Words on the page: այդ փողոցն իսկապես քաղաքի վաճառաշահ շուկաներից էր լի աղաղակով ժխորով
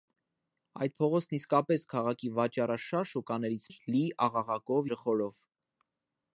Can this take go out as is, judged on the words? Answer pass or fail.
pass